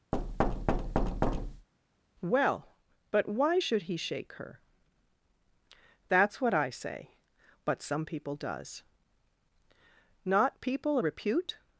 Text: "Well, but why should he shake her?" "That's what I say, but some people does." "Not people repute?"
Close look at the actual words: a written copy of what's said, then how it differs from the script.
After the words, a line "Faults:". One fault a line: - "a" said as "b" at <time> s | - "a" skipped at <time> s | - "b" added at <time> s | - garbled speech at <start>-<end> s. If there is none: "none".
"Well, but why should he shake her?" "That's what I say, but some people does." "Not people repute?"
Faults:
none